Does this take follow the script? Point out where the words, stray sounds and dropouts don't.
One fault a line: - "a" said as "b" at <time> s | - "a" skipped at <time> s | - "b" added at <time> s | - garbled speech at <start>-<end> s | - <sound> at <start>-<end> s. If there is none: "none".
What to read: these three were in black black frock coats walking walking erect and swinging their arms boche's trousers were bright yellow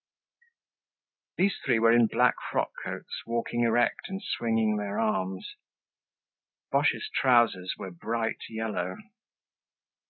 - "black" skipped at 2.3 s
- "walking" skipped at 3.6 s